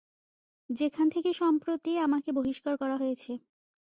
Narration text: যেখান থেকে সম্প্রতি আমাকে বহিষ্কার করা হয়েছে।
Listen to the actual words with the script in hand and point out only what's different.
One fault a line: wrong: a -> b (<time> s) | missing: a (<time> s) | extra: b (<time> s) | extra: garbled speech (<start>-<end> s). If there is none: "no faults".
no faults